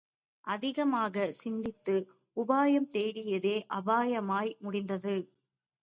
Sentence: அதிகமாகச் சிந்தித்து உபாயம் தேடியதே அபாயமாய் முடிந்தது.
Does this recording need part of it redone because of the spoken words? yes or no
no